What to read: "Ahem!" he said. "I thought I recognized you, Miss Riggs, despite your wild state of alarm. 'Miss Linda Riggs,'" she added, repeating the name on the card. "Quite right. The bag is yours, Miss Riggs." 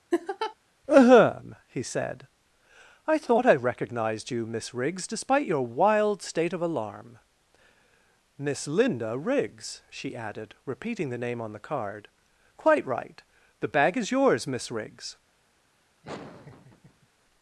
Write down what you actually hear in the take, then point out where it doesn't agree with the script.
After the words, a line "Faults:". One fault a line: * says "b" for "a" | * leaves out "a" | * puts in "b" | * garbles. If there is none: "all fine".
"Ahem!" he said. "I thought I recognized you, Miss Riggs, despite your wild state of alarm. 'Miss Linda Riggs,'" she added, repeating the name on the card. "Quite right. The bag is yours, Miss Riggs."
Faults:
all fine